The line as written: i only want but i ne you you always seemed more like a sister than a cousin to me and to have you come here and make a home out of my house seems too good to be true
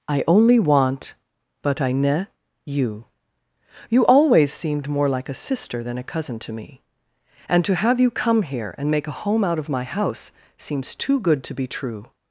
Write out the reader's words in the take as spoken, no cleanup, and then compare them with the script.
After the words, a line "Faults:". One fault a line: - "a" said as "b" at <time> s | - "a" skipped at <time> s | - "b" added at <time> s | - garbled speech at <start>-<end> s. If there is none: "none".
i only want but i ne you you always seemed more like a sister than a cousin to me and to have you come here and make a home out of my house seems too good to be true
Faults:
none